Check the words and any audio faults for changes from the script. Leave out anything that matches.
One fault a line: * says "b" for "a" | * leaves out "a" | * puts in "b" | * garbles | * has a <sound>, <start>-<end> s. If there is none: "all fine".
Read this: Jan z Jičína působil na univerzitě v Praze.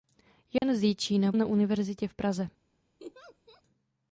* has a dropout, 0.6-0.6 s
* leaves out "působil"
* has a laugh, 3.0-3.6 s